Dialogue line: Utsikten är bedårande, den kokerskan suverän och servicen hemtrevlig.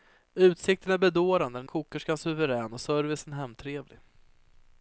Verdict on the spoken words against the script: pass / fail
pass